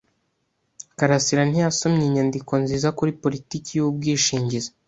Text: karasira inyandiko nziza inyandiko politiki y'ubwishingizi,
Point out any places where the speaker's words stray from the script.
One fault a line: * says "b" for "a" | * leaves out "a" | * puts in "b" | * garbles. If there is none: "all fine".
* puts in "ntiyasomye"
* says "kuri" for "inyandiko"